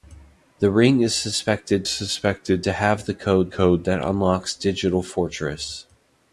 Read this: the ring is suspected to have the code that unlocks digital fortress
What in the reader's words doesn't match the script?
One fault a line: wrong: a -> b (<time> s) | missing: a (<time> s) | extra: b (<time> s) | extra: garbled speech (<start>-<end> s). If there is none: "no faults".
extra: suspected (1.9 s)
extra: code (3.5 s)